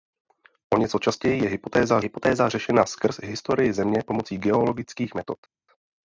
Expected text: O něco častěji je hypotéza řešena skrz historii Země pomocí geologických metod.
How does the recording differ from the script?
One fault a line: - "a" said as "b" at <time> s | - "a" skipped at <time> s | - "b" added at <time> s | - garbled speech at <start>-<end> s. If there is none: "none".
- "hypotéza" added at 2.0 s